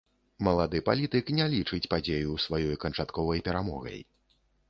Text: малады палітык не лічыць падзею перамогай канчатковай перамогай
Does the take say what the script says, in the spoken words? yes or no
no